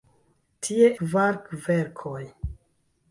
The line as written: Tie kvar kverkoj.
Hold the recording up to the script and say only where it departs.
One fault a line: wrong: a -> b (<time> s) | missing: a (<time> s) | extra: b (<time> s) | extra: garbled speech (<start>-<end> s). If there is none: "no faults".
no faults